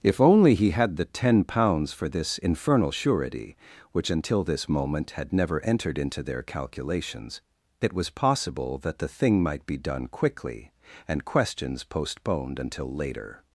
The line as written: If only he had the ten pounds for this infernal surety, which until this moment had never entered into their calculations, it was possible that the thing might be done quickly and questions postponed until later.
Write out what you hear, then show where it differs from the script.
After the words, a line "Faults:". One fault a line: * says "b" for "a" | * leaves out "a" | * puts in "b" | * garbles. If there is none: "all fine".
If only he had the ten pounds for this infernal surety, which until this moment had never entered into their calculations, it was possible that the thing might be done quickly and questions postponed until later.
Faults:
all fine